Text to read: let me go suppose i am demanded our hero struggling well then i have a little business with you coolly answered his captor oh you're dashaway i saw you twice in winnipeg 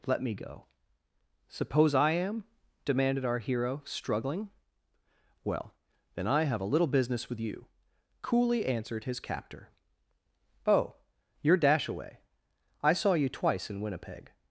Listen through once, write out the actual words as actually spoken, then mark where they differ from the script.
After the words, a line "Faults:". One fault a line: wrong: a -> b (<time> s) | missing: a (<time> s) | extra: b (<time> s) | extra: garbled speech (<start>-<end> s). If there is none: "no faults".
let me go suppose i am demanded our hero struggling well then i have a little business with you coolly answered his captor oh you're dashaway i saw you twice in winnipeg
Faults:
no faults